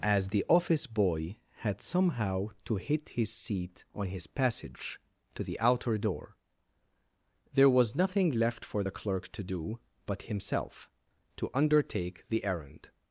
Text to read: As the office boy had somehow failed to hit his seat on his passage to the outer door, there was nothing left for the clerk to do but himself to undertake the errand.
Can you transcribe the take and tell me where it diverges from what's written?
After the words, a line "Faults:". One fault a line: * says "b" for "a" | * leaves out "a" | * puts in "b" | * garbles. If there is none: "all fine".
As the office boy had somehow to hit his seat on his passage to the outer door, there was nothing left for the clerk to do but himself to undertake the errand.
Faults:
* leaves out "failed"